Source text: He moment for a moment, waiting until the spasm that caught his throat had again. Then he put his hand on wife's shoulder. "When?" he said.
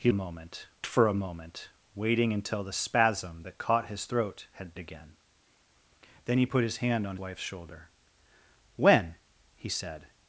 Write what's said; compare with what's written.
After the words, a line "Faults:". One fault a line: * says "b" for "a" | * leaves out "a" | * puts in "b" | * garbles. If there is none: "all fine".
He moment for a moment, waiting until the spasm that caught his throat had again. Then he put his hand on wife's shoulder. "When?" he said.
Faults:
all fine